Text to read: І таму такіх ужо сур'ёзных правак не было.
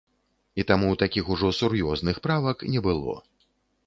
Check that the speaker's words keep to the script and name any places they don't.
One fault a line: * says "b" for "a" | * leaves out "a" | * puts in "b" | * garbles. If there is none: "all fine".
all fine